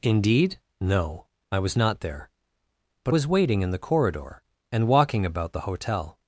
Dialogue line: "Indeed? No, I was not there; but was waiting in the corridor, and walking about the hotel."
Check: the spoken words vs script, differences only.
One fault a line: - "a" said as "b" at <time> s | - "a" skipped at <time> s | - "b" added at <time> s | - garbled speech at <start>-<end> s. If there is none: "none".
none